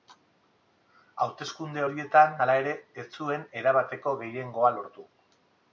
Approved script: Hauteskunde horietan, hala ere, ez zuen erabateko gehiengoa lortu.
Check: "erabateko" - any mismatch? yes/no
no